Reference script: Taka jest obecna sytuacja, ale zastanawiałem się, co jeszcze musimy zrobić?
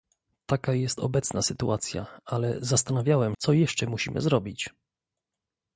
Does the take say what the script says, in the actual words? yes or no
no